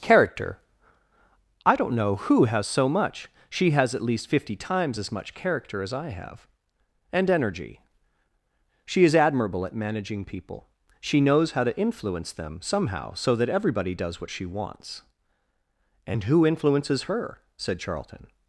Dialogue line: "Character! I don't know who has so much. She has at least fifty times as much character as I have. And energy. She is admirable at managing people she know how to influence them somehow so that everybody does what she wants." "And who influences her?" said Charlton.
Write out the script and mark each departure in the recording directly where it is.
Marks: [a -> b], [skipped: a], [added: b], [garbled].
"Character! I don't know who has so much. She has at least fifty times as much character as I have. And energy. She is admirable at managing people she [know -> knows] how to influence them somehow so that everybody does what she wants." "And who influences her?" said Charlton.